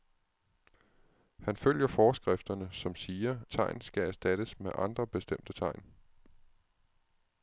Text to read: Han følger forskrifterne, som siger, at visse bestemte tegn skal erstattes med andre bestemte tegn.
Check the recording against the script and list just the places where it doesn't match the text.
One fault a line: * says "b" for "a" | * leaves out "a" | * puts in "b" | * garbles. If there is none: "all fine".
* leaves out "at visse bestemte"